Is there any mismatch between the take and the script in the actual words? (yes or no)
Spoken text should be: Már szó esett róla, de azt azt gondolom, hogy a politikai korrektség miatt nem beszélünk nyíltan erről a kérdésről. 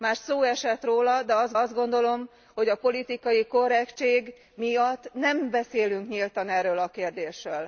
no